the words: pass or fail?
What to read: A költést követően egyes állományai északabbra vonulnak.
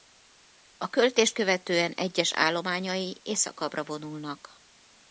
pass